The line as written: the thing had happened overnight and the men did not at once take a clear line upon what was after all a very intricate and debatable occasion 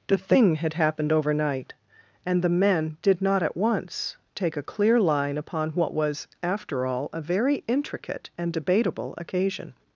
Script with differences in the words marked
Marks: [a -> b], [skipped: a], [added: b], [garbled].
the thing had happened overnight and the men did not at once take a clear line upon what was after all a very intricate and debatable occasion